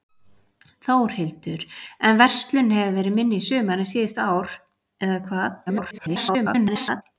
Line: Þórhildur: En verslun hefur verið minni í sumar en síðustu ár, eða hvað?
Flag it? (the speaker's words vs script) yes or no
yes